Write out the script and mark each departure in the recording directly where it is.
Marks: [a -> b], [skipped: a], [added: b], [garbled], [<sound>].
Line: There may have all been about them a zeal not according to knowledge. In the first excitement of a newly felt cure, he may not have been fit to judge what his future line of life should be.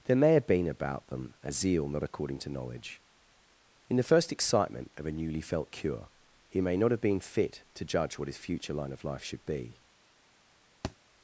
There may have [skipped: all] been about them a zeal not according to knowledge. In the first excitement of a newly felt cure, he may not have been fit to judge what his future line of life should be. [thud]